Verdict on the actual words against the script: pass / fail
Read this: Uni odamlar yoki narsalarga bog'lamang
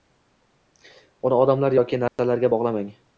pass